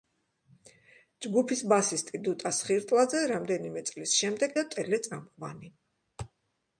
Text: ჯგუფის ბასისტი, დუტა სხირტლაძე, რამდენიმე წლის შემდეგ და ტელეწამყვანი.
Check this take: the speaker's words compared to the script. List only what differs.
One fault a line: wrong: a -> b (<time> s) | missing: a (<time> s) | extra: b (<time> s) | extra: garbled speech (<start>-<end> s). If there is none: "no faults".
no faults